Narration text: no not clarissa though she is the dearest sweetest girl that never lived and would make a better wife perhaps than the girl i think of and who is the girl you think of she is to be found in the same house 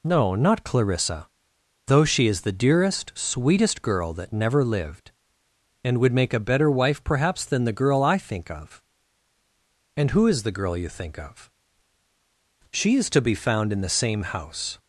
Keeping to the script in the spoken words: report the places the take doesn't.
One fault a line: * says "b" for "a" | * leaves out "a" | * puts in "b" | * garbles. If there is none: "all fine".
all fine